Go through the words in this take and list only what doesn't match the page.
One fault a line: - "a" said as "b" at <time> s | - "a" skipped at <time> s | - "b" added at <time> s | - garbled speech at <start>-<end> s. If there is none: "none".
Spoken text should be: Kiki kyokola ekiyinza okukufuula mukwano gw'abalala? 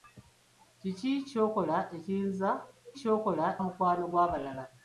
- "okukufuula" said as "kyokola" at 3.0 s